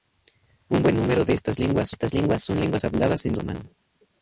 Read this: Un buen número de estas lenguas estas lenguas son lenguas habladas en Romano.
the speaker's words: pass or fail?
pass